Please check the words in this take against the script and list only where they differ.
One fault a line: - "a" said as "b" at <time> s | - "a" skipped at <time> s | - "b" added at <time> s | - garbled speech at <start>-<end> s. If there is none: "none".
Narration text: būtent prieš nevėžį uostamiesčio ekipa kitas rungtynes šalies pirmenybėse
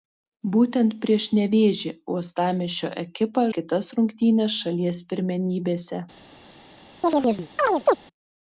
none